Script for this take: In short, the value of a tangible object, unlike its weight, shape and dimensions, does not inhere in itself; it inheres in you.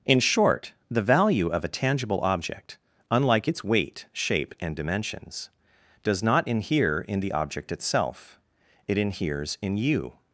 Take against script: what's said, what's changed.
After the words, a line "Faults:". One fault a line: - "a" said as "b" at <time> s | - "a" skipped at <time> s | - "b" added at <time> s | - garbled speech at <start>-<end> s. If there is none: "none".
In short, the value of a tangible object, unlike its weight, shape and dimensions, does not inhere in the object itself; it inheres in you.
Faults:
- "the object" added at 7.2 s